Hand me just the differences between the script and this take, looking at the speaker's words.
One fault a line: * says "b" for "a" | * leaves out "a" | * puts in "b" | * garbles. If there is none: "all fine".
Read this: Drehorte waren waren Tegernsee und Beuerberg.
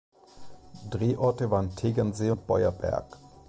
* leaves out "waren"